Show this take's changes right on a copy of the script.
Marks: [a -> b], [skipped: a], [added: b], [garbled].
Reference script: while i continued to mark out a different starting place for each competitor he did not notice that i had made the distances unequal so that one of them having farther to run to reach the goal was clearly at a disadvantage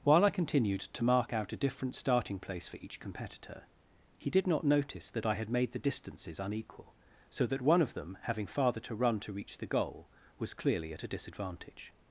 while i continued to mark out a different starting place for each competitor he did not notice that i had made the distances unequal so that one of them having farther to run to reach the goal was clearly at a disadvantage